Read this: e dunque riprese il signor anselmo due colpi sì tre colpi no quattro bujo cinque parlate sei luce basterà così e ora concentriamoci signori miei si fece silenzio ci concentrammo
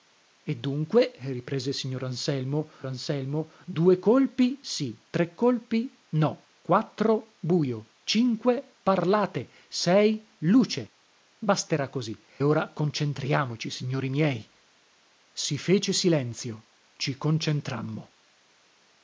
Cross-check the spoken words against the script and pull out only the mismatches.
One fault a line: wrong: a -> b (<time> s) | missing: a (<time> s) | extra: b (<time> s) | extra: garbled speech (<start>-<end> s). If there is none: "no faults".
extra: anselmo (2.9 s)
missing: e (12.2 s)